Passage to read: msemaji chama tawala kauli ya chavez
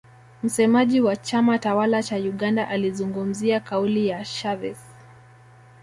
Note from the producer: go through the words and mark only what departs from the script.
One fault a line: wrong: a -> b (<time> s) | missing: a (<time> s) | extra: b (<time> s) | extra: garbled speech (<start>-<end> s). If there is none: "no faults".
extra: wa (1.0 s)
extra: cha uganda alizungumzia (2.0 s)